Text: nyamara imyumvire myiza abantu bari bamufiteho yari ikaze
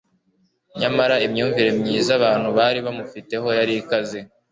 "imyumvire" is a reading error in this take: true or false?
false